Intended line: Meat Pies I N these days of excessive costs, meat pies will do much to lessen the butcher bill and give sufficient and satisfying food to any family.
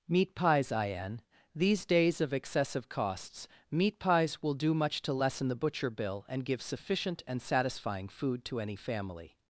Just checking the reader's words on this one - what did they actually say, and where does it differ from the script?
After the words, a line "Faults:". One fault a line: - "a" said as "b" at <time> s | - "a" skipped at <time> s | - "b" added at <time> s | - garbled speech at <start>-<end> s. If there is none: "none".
Meat Pies I N these days of excessive costs, meat pies will do much to lessen the butcher bill and give sufficient and satisfying food to any family.
Faults:
none